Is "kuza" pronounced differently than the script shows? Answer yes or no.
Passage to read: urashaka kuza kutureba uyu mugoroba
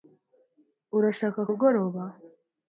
yes